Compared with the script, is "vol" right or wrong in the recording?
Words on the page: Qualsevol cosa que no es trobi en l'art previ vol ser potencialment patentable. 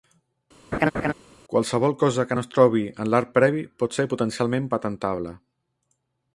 wrong